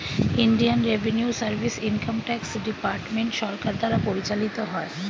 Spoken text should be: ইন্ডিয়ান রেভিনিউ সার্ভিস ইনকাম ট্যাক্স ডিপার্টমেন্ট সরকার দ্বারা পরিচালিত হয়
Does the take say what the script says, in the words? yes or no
yes